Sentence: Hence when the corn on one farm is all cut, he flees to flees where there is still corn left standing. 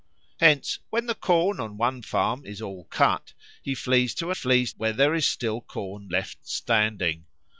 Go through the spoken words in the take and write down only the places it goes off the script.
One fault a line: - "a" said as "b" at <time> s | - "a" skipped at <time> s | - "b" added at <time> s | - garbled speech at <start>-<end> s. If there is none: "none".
none